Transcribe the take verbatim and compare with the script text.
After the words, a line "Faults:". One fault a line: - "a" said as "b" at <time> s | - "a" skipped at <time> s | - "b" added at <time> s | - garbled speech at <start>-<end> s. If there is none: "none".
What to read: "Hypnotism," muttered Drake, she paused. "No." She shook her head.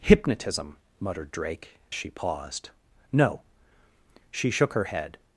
"Hypnotism," muttered Drake, she paused. "No." She shook her head.
Faults:
none